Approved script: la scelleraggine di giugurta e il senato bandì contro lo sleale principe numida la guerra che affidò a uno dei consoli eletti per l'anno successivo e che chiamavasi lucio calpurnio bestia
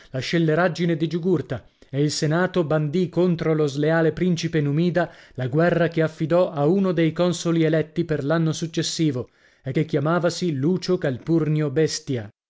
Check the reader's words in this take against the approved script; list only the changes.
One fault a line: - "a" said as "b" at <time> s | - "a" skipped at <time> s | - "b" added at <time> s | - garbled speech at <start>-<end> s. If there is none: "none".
none